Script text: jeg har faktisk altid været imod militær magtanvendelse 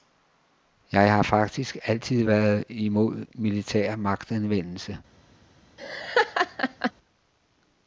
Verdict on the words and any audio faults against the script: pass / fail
fail